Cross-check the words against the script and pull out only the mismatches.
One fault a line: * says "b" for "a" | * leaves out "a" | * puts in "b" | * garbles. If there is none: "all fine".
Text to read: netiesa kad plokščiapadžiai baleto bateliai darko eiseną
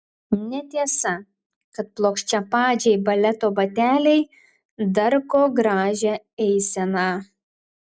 * puts in "gražią"